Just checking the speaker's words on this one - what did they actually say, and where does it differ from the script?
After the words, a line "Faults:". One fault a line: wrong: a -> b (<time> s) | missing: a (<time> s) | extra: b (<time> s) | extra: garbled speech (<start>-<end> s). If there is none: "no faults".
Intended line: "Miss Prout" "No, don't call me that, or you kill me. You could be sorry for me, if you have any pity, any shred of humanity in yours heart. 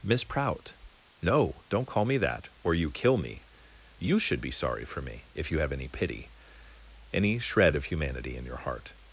"Miss Prout" "No, don't call me that, or you kill me. You should be sorry for me, if you have any pity, any shred of humanity in your heart.
Faults:
wrong: could -> should (4.2 s)
wrong: yours -> your (8.4 s)